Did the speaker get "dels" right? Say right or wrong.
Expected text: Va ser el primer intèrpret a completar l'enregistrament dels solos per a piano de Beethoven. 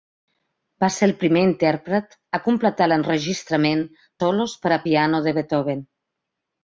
wrong